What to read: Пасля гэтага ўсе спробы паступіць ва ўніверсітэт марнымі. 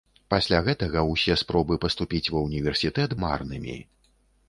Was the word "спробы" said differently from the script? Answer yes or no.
no